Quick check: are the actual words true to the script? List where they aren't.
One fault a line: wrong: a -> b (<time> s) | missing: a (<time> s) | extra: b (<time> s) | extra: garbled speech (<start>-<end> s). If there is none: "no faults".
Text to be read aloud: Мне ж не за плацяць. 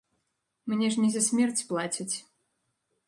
extra: смерць (1.3 s)